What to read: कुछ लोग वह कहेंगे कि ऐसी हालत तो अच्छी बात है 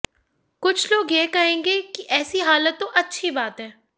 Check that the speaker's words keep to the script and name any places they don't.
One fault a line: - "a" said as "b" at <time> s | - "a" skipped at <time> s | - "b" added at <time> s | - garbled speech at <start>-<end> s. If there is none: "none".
- "वह" said as "यह" at 1.1 s